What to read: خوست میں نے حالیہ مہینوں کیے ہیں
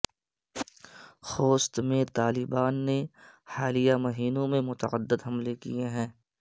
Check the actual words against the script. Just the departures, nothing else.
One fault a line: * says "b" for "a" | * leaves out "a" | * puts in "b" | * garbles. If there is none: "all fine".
* puts in "طالبان"
* puts in "میں متعدد حملے"